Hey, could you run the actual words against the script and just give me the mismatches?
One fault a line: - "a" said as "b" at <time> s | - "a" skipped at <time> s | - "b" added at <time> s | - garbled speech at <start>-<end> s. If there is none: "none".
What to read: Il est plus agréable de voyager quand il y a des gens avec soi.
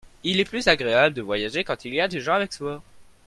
none